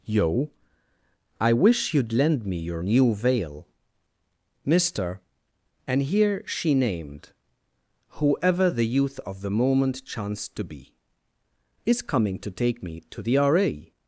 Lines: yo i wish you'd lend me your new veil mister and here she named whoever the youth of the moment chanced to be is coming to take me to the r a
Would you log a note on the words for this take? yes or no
no